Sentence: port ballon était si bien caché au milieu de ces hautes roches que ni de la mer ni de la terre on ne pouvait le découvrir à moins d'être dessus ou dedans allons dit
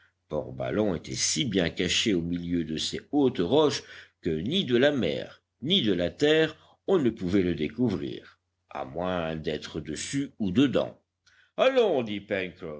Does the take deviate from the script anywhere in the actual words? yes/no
no